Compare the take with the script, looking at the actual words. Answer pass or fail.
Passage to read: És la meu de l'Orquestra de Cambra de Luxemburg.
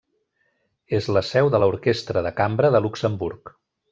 fail